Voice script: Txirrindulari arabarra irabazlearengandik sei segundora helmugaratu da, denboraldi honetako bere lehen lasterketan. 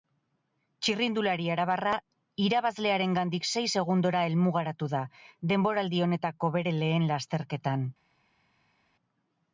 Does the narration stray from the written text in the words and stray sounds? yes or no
no